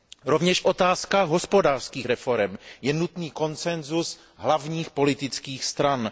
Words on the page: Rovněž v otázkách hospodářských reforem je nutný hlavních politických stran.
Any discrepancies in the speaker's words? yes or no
yes